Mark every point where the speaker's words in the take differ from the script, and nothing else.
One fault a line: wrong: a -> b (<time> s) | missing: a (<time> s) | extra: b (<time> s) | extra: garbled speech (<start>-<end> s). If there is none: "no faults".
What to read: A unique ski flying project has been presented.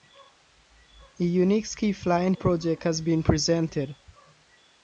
no faults